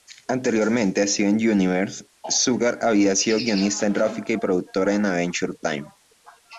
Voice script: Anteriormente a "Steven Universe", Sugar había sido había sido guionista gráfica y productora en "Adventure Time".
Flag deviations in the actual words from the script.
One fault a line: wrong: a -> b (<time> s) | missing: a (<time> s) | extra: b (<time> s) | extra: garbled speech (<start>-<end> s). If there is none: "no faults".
missing: había sido (3.4 s)